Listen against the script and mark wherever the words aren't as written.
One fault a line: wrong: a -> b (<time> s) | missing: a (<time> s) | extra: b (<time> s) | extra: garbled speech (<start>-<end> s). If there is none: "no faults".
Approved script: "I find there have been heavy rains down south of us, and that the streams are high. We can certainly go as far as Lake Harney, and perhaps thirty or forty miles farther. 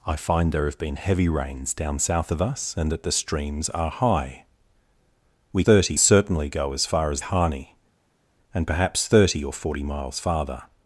wrong: can -> thirty (5.6 s)
missing: Lake (7.2 s)